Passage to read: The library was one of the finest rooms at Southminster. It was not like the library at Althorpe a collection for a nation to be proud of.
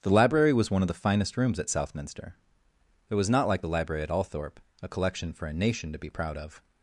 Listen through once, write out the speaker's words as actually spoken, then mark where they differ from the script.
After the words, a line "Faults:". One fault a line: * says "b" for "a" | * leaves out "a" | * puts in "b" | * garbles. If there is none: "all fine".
The library was one of the finest rooms at Southminster. It was not like the library at Althorpe a collection for a nation to be proud of.
Faults:
all fine